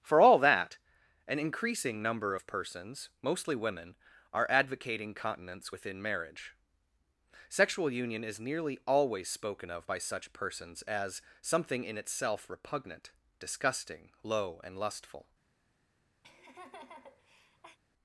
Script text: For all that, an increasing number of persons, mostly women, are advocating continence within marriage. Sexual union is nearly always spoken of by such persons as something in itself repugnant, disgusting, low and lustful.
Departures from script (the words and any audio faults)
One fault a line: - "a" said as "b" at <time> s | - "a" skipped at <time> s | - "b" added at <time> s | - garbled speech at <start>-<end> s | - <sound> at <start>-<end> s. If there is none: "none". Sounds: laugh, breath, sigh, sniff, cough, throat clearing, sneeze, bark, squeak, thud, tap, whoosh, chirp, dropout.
- laugh at 16.2-17.8 s